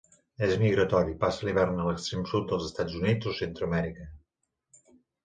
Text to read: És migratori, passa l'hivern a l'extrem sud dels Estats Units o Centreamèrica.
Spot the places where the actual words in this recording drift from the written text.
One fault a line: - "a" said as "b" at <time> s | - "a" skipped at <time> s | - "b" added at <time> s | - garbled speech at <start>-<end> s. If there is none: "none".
none